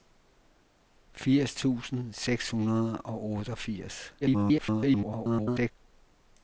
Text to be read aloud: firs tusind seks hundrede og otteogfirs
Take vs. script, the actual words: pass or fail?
fail